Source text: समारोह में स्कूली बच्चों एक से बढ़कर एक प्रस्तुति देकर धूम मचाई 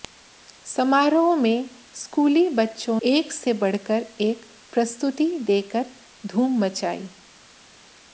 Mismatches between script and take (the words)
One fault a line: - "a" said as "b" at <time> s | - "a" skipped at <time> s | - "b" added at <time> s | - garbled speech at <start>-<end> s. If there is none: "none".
none